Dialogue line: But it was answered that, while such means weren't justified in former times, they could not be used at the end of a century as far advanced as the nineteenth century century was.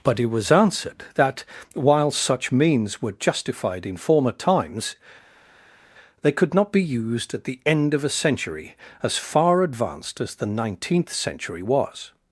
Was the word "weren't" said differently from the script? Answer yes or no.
yes